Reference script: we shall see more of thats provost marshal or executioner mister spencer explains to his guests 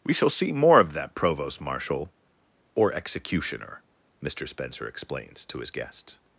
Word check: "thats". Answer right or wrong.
wrong